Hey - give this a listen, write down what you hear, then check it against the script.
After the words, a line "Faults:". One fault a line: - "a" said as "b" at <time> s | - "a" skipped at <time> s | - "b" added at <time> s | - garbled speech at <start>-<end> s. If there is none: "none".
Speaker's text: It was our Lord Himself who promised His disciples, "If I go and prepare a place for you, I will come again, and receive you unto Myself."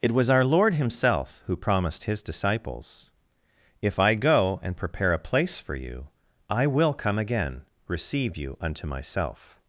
It was our Lord Himself who promised His disciples, "If I go and prepare a place for you, I will come again, receive you unto Myself."
Faults:
- "and" skipped at 7.6 s